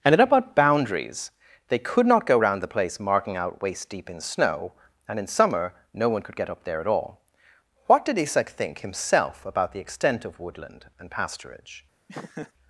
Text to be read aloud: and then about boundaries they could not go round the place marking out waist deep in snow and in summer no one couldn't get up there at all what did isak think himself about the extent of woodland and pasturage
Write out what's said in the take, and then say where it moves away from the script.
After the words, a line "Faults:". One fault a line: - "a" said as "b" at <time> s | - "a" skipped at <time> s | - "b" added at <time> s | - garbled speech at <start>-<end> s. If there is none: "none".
and then about boundaries they could not go round the place marking out waist deep in snow and in summer no one could get up there at all what did isak think himself about the extent of woodland and pasturage
Faults:
- "couldn't" said as "could" at 6.2 s